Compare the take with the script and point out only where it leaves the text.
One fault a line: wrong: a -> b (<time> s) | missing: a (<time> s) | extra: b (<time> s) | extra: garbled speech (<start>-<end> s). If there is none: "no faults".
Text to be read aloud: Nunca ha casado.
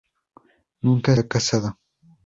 no faults